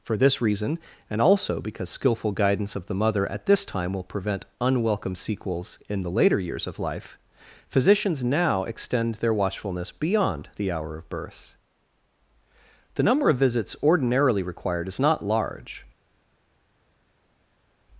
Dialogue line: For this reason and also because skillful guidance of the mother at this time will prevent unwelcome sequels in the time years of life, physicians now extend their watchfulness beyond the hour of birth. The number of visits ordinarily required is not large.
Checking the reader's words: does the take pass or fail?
fail